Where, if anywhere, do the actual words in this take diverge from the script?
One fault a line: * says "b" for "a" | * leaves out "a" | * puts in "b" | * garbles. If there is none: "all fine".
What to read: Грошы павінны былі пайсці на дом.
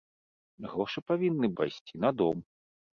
* leaves out "былі"